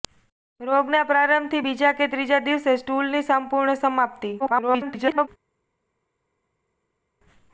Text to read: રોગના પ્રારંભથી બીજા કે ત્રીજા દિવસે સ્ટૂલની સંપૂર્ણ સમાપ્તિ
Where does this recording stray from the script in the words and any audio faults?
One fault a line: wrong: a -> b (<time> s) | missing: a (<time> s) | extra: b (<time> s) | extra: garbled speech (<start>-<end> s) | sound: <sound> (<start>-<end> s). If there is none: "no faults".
extra: garbled speech (4.4-5.3 s)